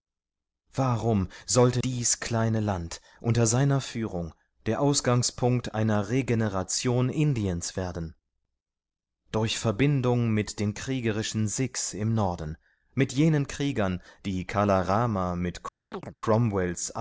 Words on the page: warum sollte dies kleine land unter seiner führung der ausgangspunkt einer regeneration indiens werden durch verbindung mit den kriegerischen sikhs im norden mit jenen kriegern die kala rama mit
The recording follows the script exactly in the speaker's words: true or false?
true